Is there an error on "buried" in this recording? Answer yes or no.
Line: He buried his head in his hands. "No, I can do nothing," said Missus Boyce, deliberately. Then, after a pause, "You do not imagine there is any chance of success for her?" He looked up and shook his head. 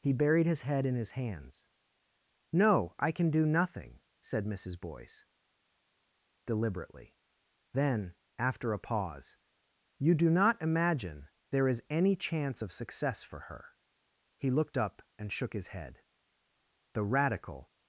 no